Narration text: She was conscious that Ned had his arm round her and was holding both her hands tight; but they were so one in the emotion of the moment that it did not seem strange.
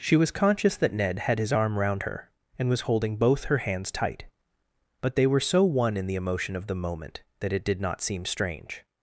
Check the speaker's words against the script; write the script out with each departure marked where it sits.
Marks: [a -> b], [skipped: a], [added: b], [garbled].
She was conscious that Ned had his arm round her and was holding both her hands tight; but they were so one in the emotion of the moment that it did not seem strange.